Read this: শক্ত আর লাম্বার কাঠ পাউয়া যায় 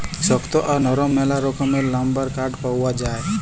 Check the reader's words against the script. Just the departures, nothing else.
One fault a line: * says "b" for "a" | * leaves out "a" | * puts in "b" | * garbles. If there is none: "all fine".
* puts in "লরম ম্যালা রকমের"